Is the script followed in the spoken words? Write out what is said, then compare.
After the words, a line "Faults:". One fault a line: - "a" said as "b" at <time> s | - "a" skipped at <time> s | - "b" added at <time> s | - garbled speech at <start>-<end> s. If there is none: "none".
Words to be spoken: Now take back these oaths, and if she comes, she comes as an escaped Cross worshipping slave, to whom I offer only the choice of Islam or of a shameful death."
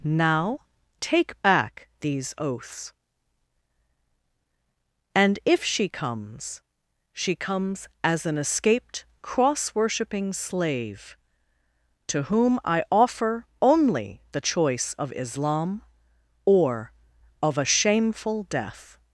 Now take back these oaths, and if she comes, she comes as an escaped Cross worshipping slave, to whom I offer only the choice of Islam or of a shameful death."
Faults:
none